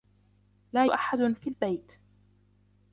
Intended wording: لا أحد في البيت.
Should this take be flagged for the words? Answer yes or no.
no